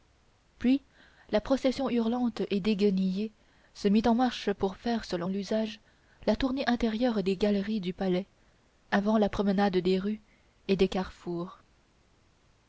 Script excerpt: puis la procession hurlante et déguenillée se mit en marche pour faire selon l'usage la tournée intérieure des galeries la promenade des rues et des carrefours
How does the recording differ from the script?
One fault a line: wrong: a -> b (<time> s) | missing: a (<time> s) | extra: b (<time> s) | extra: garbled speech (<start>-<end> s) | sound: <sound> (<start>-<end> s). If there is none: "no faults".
extra: du palais avant (7.8 s)